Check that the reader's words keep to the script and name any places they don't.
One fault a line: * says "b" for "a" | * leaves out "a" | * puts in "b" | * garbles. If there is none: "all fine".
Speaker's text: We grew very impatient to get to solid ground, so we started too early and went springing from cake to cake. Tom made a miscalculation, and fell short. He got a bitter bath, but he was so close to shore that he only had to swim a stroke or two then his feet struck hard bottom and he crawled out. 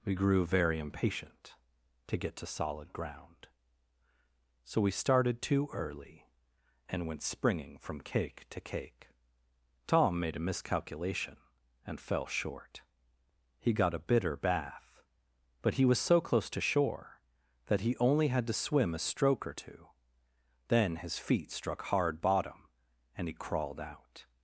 all fine